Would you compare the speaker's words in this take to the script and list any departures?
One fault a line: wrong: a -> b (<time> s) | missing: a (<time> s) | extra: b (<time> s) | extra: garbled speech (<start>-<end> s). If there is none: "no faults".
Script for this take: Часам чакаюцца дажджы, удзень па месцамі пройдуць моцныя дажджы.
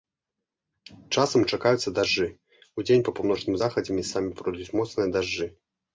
extra: паўночным захадзе (3.2 s)